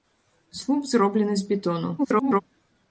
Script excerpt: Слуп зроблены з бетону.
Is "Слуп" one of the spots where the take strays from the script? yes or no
no